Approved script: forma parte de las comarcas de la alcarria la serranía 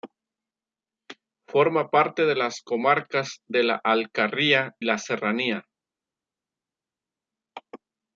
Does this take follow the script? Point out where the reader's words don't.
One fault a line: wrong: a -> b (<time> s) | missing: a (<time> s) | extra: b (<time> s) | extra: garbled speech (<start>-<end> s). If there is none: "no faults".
no faults